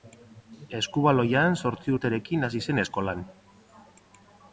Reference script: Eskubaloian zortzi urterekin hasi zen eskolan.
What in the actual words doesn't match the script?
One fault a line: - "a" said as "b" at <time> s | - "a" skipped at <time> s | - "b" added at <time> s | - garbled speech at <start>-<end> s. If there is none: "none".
none